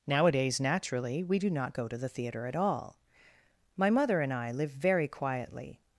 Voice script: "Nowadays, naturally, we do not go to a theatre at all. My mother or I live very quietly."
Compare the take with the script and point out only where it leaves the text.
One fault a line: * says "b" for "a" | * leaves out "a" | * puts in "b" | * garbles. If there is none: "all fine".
* says "the" for "a"
* says "and" for "or"